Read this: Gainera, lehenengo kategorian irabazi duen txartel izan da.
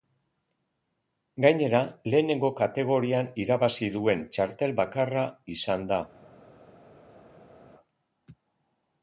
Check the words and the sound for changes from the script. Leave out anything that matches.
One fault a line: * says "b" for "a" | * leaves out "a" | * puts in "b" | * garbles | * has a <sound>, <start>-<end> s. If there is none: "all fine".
* puts in "bakarra"